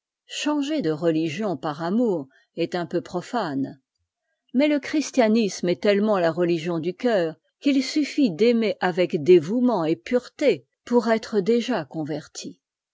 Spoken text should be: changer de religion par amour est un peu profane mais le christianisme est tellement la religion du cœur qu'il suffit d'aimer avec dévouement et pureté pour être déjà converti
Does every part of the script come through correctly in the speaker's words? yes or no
yes